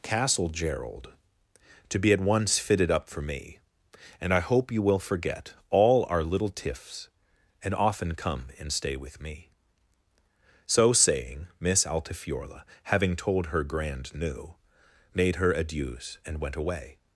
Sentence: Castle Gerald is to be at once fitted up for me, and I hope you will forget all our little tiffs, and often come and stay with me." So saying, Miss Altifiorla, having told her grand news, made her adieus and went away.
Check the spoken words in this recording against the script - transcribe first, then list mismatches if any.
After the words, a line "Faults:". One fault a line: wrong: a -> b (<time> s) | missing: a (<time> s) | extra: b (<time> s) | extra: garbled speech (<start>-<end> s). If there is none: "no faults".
Castle Gerald to be at once fitted up for me, and I hope you will forget all our little tiffs, and often come and stay with me." So saying, Miss Altifiorla, having told her grand new, made her adieus and went away.
Faults:
missing: is (1.1 s)
wrong: news -> new (14.2 s)